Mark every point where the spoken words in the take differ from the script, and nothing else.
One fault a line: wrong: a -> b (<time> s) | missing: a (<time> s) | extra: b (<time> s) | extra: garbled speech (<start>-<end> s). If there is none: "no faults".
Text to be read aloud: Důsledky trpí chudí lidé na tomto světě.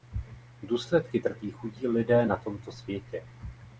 no faults